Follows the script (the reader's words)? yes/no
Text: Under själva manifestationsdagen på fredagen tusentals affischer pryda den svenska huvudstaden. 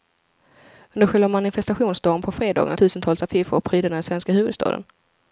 yes